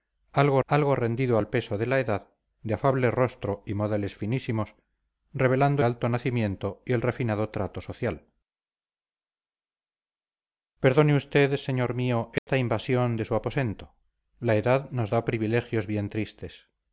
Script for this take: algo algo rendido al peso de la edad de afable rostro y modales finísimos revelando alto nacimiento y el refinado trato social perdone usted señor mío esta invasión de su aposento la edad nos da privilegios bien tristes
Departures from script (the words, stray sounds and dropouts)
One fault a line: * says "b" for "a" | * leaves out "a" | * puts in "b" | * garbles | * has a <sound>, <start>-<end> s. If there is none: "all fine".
* has a dropout, 12.4-12.5 s